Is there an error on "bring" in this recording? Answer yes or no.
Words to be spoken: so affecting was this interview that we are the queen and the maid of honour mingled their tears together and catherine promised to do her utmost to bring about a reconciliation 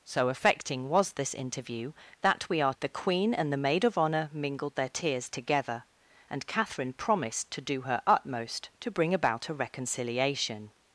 no